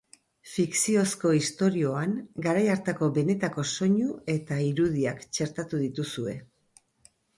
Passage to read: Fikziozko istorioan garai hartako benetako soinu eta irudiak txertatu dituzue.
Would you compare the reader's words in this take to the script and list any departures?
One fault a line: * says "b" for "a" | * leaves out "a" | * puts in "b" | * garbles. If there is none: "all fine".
all fine